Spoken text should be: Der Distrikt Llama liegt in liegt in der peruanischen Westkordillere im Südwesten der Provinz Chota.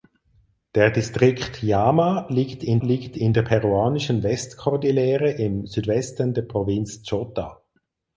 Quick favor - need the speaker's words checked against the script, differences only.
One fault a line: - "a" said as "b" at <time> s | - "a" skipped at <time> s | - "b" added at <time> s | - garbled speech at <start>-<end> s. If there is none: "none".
none